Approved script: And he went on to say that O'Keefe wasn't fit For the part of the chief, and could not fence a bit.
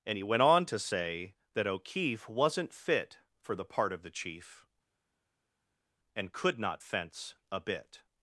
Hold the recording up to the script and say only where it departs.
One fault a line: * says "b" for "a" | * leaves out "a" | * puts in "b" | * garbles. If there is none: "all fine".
all fine